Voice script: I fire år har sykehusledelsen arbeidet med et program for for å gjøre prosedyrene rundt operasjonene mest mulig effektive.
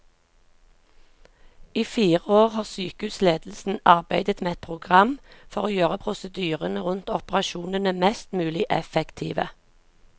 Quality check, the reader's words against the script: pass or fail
fail